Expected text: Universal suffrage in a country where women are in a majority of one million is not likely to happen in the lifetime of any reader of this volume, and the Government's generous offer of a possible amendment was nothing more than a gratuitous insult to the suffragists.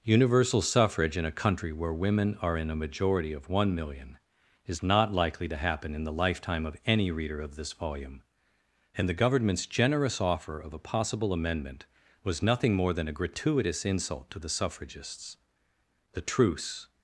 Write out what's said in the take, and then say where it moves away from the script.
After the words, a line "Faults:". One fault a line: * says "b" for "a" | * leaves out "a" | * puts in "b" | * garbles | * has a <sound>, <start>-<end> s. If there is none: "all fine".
Universal suffrage in a country where women are in a majority of one million is not likely to happen in the lifetime of any reader of this volume, and the Government's generous offer of a possible amendment was nothing more than a gratuitous insult to the suffragists. The truce
Faults:
* puts in "The truce"